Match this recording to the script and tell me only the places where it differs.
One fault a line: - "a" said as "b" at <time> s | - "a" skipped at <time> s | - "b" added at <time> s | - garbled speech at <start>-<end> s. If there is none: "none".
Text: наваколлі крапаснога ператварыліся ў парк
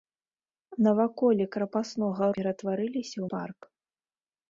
none